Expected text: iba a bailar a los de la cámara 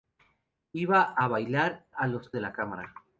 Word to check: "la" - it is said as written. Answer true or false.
true